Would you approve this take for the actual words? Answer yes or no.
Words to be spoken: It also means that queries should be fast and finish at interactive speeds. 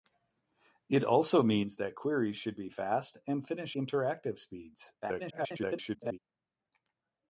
no